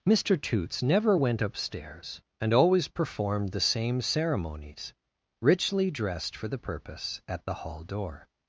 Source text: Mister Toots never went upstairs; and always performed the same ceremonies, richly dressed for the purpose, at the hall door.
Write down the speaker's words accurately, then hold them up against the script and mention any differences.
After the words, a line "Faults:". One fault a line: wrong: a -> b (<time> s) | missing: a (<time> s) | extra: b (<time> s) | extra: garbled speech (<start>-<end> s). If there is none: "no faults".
Mister Toots never went upstairs; and always performed the same ceremonies, richly dressed for the purpose, at the hall door.
Faults:
no faults